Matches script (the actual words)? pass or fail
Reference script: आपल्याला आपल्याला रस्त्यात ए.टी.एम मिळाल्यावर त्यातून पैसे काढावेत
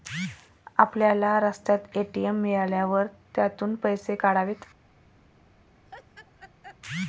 fail